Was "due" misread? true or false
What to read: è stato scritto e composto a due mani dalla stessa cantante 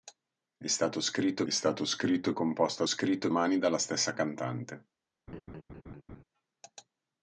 true